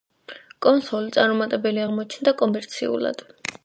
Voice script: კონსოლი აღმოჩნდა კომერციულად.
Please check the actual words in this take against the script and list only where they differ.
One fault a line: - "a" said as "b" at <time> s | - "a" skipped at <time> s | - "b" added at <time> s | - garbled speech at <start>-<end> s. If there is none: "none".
- "წარუმატებელი" added at 1.2 s